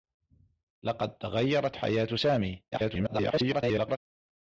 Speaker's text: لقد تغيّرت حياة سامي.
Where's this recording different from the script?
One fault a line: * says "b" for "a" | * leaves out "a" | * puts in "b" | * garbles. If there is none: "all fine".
* garbles